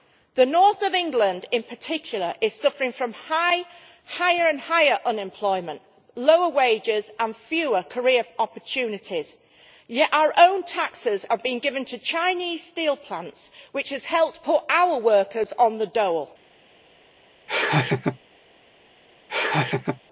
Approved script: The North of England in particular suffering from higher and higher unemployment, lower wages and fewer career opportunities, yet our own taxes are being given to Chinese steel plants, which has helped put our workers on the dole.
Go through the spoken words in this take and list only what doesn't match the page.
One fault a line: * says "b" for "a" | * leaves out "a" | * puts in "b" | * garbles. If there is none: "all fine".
* puts in "is"